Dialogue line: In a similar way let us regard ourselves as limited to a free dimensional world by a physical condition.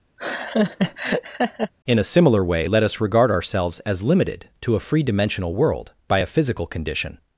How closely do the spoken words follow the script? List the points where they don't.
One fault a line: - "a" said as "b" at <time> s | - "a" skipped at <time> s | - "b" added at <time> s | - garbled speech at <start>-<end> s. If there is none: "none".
none